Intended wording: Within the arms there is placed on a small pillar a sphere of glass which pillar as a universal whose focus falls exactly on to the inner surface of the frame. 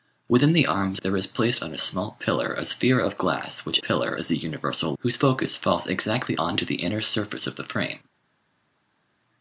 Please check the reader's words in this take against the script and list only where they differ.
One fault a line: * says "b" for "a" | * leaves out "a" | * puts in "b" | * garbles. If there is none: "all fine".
all fine